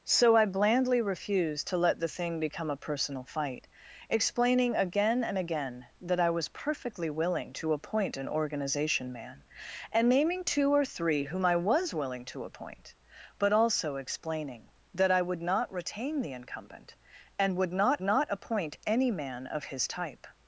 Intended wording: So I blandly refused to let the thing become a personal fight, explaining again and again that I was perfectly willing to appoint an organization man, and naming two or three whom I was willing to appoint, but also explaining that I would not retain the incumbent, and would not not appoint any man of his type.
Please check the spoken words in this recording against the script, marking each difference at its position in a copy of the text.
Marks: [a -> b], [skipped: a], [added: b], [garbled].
So I blandly refused to let the thing become a personal fight, explaining again and again that I was perfectly willing to appoint an organization man, and naming two or three whom I was willing to appoint, but also explaining that I would not retain the incumbent, and would not not appoint any man of his type.